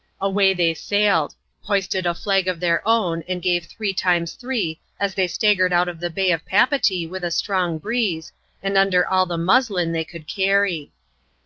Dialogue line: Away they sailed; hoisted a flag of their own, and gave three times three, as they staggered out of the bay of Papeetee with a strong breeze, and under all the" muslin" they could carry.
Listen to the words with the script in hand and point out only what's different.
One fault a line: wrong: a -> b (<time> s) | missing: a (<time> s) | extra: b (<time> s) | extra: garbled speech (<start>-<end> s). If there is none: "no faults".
no faults